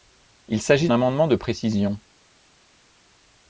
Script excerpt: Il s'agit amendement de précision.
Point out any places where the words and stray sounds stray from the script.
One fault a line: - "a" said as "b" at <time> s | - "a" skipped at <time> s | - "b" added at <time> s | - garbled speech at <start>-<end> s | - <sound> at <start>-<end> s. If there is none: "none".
none